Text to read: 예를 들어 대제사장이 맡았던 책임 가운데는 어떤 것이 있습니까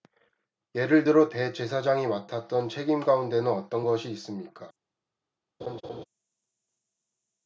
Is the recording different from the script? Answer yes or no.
no